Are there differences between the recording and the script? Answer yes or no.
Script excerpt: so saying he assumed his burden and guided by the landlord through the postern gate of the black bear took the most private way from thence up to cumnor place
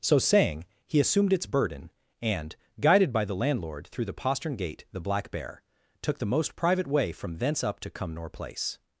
yes